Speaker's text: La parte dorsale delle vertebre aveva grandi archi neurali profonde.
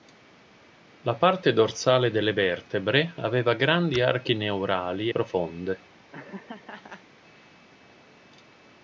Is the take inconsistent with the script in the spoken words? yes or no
no